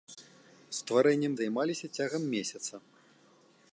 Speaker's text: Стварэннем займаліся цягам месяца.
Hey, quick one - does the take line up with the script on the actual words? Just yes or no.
yes